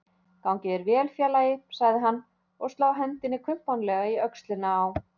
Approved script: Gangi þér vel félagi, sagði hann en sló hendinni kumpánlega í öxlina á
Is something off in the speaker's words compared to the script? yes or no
yes